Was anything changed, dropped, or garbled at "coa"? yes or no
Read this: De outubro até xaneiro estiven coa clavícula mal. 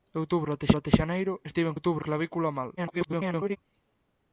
yes